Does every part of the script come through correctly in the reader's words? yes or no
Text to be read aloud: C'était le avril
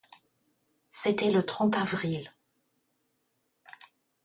no